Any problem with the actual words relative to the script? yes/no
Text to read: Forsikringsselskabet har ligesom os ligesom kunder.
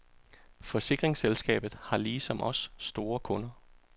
yes